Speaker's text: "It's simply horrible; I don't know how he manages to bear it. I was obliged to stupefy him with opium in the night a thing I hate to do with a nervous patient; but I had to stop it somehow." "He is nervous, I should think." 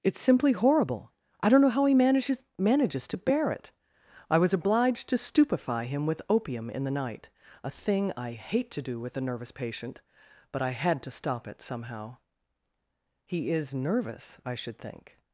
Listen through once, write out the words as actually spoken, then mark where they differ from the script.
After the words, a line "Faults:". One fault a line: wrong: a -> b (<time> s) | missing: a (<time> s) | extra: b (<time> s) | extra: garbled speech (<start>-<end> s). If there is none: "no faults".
"It's simply horrible; I don't know how he manages manages to bear it. I was obliged to stupefy him with opium in the night a thing I hate to do with a nervous patient; but I had to stop it somehow." "He is nervous, I should think."
Faults:
extra: manages (2.6 s)